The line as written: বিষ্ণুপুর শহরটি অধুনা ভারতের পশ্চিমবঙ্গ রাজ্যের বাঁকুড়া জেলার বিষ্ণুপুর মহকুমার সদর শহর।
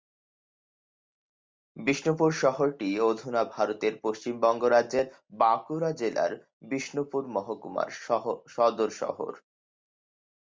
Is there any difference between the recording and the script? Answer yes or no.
no